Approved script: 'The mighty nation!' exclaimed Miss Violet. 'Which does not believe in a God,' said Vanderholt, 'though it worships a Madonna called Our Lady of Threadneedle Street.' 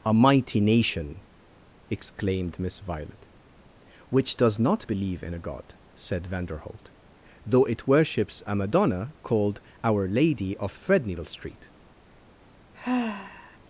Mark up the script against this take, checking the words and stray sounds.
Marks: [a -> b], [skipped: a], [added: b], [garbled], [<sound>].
['The -> A] mighty nation!' exclaimed Miss Violet. 'Which does not believe in a God,' said Vanderholt, 'though it worships a Madonna called Our Lady of Threadneedle Street.' [sigh]